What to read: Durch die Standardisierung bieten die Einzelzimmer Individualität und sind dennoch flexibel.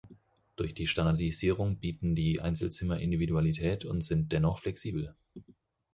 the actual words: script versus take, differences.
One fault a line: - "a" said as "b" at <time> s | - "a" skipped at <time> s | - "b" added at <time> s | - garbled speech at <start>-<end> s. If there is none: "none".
none